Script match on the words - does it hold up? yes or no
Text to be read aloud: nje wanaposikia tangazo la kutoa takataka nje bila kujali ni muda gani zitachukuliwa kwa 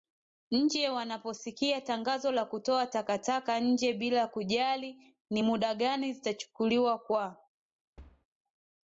yes